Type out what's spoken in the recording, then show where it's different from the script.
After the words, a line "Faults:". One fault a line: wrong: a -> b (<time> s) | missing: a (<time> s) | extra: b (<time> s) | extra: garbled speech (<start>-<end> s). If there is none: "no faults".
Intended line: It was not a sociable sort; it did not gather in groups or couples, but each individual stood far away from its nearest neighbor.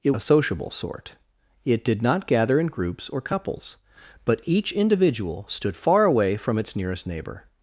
It a sociable sort; it did not gather in groups or couples, but each individual stood far away from its nearest neighbor.
Faults:
missing: was not (0.1 s)